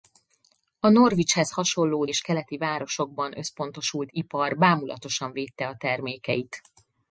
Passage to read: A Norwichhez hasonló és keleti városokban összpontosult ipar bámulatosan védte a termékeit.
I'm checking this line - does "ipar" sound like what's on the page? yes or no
yes